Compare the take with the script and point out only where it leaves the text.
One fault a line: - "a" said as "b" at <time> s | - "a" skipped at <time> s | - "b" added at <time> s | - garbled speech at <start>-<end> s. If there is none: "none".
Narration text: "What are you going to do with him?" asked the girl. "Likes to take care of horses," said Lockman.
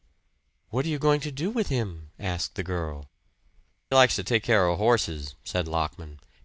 none